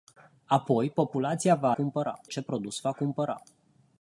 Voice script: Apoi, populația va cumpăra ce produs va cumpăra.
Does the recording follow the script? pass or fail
pass